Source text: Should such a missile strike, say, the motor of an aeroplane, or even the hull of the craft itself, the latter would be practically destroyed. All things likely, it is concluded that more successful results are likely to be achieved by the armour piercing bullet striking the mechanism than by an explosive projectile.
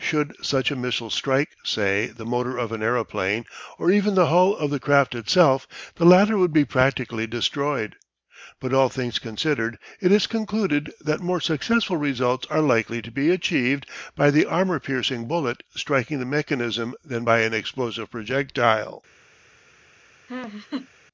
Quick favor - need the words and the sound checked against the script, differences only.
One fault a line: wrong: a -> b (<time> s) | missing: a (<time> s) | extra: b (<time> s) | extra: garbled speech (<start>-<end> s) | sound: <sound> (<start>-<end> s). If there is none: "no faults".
extra: But (8.6 s)
wrong: likely -> considered (9.2 s)
sound: laugh (20.3-20.9 s)